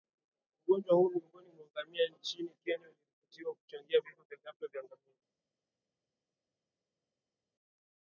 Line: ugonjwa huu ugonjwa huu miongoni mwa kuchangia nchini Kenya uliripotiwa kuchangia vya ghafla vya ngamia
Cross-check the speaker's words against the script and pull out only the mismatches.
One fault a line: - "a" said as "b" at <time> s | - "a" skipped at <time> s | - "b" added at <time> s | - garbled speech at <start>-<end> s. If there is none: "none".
- "ugonjwa huu" skipped at 1.1 s
- "kuchangia" said as "ngamia" at 1.7 s
- "vifo" added at 4.0 s